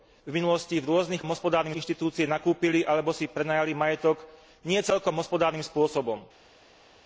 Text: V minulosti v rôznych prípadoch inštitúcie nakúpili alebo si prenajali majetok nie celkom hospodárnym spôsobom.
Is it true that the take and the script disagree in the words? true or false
true